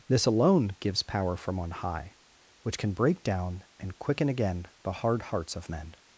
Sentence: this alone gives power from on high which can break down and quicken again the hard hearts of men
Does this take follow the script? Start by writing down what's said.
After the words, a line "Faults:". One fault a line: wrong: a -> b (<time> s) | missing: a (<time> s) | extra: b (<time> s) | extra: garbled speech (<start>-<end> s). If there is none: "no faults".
this alone gives power from on high which can break down and quicken again the hard hearts of men
Faults:
no faults